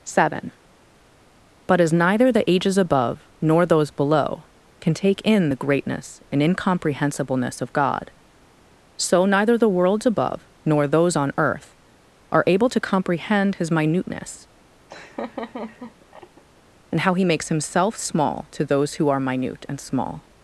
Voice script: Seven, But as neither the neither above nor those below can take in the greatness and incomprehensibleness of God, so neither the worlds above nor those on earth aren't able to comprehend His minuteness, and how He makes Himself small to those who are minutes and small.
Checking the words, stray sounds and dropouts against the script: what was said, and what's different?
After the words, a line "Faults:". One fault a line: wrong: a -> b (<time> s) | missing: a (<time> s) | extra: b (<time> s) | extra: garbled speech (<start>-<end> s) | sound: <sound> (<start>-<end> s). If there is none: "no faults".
Seven, But as neither the ages above nor those below can take in the greatness and incomprehensibleness of God, so neither the worlds above nor those on earth are able to comprehend His minuteness, and how He makes Himself small to those who are minute and small.
Faults:
wrong: neither -> ages (2.5 s)
wrong: aren't -> are (12.3 s)
sound: laugh (14.9-16.4 s)
wrong: minutes -> minute (19.2 s)